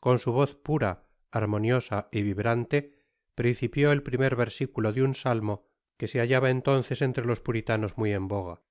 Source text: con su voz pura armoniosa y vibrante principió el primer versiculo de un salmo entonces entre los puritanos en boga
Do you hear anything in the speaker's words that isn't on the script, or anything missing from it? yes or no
yes